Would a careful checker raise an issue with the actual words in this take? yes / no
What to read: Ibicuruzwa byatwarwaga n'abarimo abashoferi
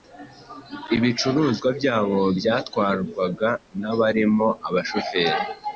yes